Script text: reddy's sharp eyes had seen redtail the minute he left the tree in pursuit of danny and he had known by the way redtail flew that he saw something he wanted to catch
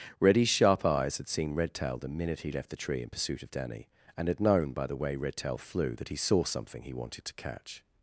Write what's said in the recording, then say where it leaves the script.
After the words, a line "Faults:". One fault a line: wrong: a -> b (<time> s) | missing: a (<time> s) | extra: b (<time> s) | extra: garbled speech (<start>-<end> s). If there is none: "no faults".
reddy's sharp eyes had seen redtail the minute he left the tree in pursuit of danny and had known by the way redtail flew that he saw something he wanted to catch
Faults:
missing: he (4.3 s)